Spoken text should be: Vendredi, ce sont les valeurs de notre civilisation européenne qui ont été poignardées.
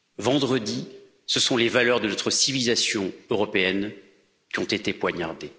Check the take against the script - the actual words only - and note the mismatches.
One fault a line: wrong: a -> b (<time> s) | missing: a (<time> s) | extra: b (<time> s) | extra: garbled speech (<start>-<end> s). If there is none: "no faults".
no faults